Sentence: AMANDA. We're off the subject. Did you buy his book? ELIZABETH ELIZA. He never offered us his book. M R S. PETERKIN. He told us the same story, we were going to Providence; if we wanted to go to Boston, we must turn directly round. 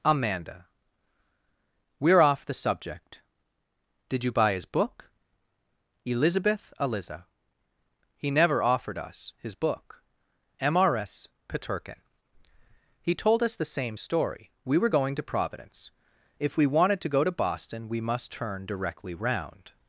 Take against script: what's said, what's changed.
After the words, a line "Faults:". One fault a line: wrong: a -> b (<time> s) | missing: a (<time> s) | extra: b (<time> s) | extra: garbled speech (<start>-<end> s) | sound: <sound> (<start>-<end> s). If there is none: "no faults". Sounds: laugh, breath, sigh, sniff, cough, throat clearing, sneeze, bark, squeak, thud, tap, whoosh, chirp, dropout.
AMANDA. We're off the subject. Did you buy his book? ELIZABETH ELIZA. He never offered us his book. M R S. PETERKIN. He told us the same story, we were going to Providence; if we wanted to go to Boston, we must turn directly round.
Faults:
no faults